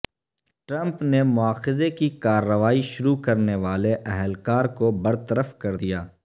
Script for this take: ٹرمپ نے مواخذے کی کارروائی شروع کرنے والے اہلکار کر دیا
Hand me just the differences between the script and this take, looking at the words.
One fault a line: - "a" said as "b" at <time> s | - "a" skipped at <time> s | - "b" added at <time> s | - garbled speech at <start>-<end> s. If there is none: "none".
- "کو برطرف" added at 4.8 s